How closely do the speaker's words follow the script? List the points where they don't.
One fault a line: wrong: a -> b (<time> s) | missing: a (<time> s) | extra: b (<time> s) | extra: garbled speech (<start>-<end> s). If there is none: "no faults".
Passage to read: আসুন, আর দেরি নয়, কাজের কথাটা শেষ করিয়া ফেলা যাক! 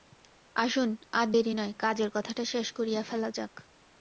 no faults